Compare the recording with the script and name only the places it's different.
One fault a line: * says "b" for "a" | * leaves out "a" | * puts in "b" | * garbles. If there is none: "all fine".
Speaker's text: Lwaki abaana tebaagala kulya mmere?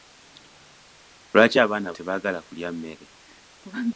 all fine